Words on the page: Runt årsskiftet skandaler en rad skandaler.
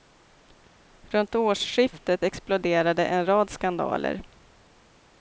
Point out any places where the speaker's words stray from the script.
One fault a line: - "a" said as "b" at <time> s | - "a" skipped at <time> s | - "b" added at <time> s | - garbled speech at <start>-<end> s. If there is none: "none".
- "skandaler" said as "exploderade" at 2.2 s